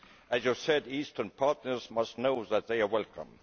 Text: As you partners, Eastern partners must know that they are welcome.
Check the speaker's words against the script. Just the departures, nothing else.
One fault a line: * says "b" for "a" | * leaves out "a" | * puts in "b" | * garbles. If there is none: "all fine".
* says "said" for "partners"